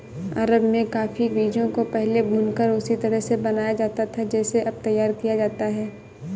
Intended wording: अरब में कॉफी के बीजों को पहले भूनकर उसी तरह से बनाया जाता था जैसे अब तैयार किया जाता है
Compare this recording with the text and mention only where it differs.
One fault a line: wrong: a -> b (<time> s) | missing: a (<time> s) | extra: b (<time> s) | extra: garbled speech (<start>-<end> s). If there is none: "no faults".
missing: के (1.3 s)